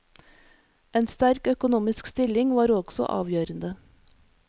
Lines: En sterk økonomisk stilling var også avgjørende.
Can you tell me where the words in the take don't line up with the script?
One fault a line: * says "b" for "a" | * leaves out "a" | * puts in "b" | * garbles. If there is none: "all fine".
all fine